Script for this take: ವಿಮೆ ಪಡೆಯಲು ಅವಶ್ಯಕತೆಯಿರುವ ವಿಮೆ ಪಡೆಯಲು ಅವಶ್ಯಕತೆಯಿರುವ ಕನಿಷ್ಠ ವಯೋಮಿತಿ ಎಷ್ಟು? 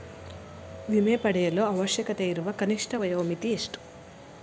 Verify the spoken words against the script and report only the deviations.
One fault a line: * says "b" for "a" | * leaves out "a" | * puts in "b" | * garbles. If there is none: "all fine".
* leaves out "ವಿಮೆ ಪಡೆಯಲು ಅವಶ್ಯಕತೆಯಿರುವ"